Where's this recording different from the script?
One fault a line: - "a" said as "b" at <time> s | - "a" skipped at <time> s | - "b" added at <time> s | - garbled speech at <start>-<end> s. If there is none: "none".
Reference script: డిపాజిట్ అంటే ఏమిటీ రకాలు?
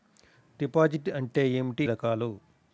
none